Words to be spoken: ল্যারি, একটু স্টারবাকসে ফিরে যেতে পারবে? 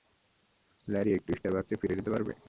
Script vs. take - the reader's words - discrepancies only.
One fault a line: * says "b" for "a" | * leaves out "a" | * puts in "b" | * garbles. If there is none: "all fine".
all fine